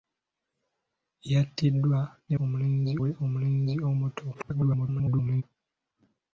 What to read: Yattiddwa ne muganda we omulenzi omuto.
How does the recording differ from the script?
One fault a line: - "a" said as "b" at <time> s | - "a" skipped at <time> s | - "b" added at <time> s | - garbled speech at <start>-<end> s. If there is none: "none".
- "muganda" said as "omulenzi" at 2.4 s
- garbled speech at 4.3-5.4 s